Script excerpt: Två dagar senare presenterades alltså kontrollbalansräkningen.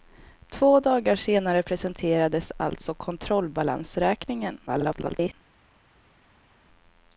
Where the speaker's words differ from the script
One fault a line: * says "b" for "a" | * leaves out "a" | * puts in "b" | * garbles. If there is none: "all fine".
* garbles